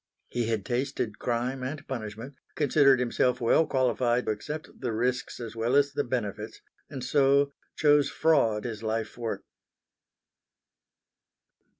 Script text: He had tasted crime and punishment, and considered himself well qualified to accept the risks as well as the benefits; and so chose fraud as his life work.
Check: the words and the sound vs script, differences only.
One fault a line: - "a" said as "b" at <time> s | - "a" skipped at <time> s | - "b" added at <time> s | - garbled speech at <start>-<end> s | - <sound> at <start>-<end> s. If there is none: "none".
- "and" skipped at 2.3 s
- "to" skipped at 4.3 s
- "as" skipped at 8.7 s